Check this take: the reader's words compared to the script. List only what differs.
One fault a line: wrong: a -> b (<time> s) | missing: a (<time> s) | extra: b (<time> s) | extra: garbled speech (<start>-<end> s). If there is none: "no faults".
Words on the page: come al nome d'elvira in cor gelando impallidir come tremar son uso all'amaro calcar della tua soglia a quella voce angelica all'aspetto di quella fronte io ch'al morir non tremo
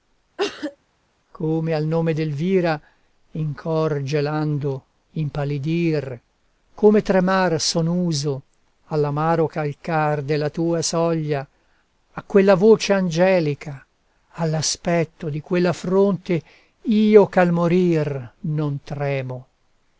no faults